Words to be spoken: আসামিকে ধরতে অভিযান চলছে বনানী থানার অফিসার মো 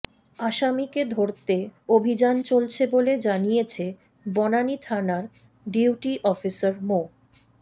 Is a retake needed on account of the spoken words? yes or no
yes